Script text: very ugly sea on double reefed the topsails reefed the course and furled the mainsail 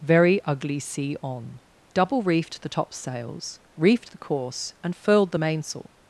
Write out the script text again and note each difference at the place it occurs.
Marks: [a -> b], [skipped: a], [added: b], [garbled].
very ugly sea on double reefed the topsails reefed the course and furled the mainsail